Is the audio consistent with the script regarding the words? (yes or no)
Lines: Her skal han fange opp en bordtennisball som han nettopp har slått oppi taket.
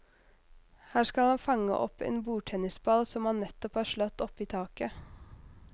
yes